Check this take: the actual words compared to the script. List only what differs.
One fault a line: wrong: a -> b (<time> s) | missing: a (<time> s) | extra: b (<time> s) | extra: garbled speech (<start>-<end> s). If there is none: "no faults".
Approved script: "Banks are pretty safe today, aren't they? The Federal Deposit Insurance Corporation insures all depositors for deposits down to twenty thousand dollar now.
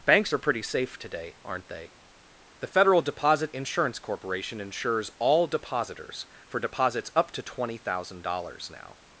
wrong: down -> up (7.2 s)
wrong: dollar -> dollars (8.2 s)